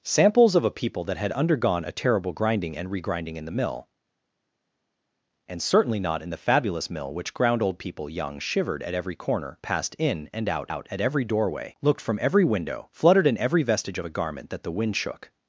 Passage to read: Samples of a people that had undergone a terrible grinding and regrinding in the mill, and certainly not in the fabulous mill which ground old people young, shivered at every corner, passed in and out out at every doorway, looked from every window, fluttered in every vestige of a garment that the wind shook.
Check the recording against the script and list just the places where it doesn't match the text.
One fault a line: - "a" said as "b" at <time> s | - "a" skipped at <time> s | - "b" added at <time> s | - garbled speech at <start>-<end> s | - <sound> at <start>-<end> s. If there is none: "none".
none